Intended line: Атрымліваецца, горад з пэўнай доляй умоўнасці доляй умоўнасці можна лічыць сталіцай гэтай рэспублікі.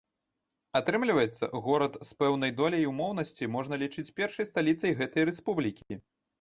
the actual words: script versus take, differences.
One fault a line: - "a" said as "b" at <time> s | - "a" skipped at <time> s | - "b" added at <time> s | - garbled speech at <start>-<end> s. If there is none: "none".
- "доляй умоўнасці" skipped at 3.5 s
- "першай" added at 4.2 s